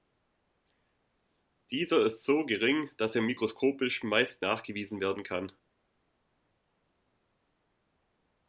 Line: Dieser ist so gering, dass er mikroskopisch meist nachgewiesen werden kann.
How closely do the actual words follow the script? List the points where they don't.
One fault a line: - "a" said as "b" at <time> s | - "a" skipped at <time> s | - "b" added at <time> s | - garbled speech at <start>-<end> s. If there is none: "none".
none